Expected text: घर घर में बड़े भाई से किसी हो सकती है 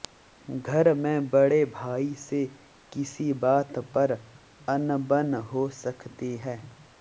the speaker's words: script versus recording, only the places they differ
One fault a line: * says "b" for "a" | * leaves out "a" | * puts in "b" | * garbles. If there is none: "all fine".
* leaves out "घर"
* puts in "बात पर अनबन"